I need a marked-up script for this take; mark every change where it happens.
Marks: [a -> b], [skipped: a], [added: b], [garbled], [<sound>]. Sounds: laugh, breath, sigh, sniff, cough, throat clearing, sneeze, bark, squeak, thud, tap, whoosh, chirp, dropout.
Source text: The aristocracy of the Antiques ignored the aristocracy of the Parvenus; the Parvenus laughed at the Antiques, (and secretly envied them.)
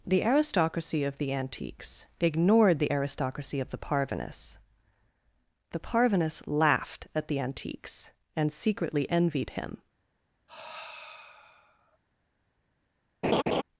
The aristocracy of the Antiques ignored the aristocracy of the Parvenus; the Parvenus laughed at the Antiques, (and secretly envied [them.) -> him] [sigh] [laugh]